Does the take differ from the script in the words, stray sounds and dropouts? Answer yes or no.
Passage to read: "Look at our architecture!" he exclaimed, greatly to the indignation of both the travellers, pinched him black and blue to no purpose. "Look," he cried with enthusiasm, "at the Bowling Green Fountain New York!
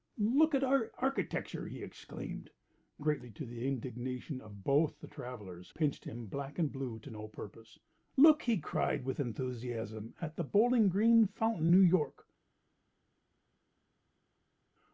no